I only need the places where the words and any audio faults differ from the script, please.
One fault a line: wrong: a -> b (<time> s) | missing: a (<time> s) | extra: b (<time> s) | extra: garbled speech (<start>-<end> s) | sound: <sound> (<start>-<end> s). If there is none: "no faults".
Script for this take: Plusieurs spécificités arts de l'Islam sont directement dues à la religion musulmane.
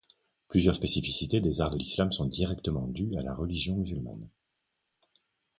extra: des (1.4 s)